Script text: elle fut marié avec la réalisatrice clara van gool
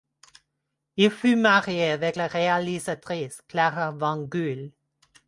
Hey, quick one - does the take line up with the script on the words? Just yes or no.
no